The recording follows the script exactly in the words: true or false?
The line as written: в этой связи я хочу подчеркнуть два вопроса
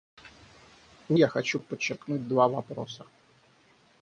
false